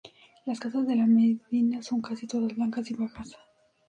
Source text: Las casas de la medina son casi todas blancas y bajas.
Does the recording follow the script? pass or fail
pass